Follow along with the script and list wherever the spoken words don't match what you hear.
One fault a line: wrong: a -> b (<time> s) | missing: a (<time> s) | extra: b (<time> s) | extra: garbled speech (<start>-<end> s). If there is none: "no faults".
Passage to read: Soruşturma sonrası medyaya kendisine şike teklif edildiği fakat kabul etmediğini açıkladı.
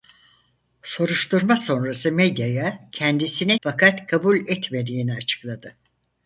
missing: şike teklif edildiği (3.6 s)